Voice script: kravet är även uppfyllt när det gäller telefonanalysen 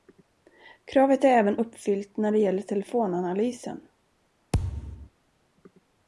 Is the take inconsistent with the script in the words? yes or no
no